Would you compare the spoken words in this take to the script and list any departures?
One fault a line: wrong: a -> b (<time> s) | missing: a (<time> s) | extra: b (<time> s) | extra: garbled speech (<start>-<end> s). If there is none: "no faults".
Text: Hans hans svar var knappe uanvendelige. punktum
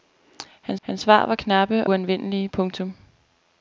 no faults